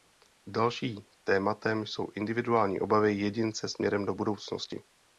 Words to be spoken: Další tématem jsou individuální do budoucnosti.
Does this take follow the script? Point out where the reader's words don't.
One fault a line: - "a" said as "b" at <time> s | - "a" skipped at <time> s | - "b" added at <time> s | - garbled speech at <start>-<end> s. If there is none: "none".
- "obavy jedince směrem" added at 2.8 s